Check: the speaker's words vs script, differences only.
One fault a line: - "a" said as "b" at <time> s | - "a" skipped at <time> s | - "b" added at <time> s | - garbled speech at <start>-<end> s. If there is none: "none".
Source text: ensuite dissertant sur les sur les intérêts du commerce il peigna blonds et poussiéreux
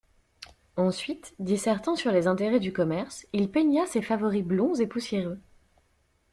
- "sur les" skipped at 2.2 s
- "ses favoris" added at 3.9 s